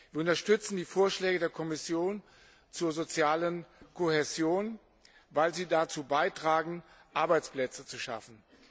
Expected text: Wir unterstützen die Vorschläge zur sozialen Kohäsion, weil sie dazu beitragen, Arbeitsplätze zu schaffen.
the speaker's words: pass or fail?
fail